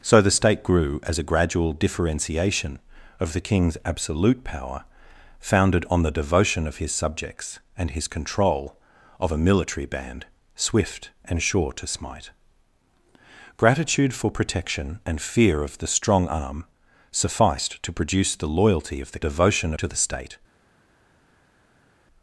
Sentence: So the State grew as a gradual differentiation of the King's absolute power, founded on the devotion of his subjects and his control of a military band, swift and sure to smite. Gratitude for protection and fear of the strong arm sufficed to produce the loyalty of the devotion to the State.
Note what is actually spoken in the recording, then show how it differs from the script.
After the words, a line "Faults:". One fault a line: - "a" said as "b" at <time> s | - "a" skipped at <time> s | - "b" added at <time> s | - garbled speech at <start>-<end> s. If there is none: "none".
So the State grew as a gradual differentiation of the King's absolute power, founded on the devotion of his subjects and his control of a military band, swift and sure to smite. Gratitude for protection and fear of the strong arm sufficed to produce the loyalty of the devotion to the State.
Faults:
none